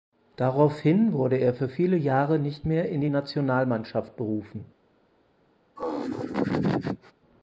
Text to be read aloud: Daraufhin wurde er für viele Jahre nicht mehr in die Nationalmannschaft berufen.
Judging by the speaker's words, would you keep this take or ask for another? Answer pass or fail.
pass